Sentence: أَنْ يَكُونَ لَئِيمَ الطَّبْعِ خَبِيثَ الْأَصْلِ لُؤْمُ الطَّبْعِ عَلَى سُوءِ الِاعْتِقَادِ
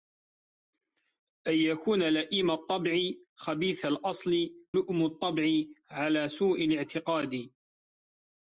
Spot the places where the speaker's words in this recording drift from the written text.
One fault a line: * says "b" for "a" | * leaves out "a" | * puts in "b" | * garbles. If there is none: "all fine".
all fine